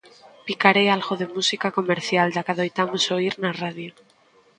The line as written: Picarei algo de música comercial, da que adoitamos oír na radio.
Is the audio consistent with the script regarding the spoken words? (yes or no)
yes